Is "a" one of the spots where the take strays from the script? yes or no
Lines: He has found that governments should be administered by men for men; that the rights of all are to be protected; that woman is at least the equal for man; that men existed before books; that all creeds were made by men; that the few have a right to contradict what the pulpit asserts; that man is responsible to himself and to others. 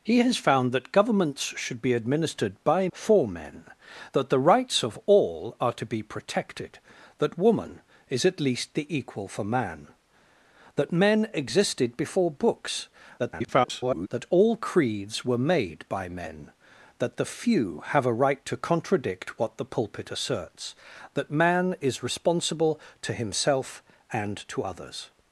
no